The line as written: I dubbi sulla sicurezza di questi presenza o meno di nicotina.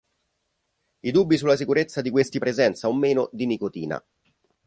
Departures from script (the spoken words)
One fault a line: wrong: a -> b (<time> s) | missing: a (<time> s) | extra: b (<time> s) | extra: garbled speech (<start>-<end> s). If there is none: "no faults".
no faults